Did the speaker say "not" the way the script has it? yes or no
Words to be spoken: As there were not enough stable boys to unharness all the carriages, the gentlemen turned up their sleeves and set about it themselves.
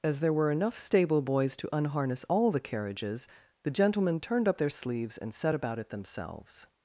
no